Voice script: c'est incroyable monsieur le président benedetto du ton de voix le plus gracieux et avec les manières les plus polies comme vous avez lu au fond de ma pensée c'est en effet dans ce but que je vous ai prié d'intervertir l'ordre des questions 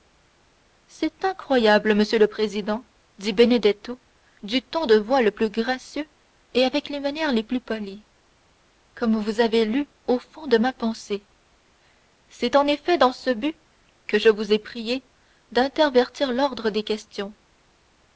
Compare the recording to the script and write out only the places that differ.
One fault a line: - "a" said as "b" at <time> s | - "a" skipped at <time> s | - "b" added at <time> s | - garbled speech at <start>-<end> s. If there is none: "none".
- "dit" added at 3.2 s